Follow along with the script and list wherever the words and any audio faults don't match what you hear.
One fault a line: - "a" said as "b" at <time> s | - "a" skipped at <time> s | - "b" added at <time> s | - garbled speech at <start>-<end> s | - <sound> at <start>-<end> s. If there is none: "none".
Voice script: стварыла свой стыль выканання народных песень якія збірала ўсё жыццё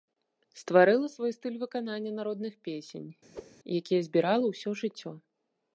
- whoosh at 3.3-3.5 s